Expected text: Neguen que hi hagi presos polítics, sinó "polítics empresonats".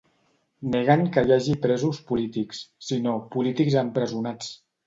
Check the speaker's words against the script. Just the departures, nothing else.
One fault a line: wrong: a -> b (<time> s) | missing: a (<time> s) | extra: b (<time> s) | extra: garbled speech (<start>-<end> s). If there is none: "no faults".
no faults